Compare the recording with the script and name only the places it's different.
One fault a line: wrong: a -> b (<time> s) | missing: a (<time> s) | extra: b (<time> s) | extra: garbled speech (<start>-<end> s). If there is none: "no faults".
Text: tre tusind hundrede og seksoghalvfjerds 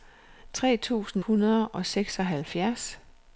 no faults